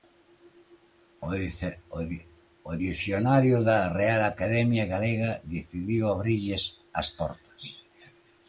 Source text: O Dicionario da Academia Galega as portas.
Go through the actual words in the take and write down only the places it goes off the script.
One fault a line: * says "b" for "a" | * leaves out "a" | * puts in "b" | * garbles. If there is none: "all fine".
* puts in "Real"
* puts in "decidiu abrirlles"